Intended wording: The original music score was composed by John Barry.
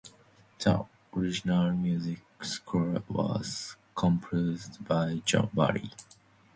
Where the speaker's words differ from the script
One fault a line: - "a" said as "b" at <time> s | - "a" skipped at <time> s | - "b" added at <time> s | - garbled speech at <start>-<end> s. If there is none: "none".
none